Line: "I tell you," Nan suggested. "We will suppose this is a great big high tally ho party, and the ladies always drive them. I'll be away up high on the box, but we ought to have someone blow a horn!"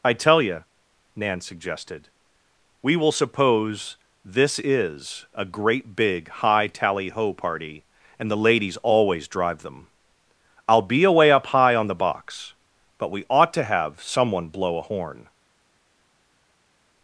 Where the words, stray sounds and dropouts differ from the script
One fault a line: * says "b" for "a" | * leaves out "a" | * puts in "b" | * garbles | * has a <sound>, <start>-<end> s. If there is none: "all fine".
all fine